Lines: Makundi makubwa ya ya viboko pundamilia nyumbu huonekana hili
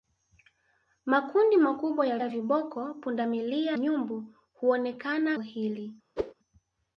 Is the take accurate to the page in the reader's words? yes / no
yes